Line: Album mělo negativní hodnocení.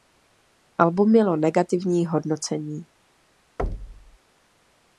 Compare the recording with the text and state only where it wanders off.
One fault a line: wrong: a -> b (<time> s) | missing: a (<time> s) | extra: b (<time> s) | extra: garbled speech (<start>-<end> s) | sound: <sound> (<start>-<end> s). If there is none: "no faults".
sound: thud (3.6-4.2 s)